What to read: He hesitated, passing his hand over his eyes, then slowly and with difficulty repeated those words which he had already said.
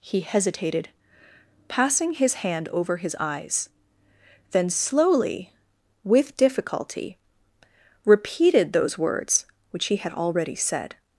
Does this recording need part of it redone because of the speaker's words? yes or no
yes